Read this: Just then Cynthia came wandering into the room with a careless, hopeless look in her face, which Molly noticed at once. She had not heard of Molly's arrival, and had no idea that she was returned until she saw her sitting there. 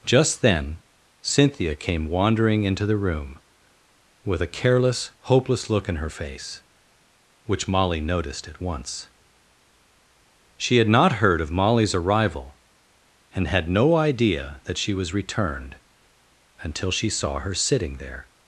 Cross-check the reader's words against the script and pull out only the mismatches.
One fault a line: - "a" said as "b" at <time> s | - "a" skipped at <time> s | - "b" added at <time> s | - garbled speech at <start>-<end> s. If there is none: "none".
none